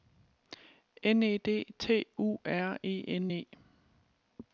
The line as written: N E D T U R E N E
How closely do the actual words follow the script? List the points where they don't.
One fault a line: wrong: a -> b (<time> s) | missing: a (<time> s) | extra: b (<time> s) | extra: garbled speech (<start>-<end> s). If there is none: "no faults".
no faults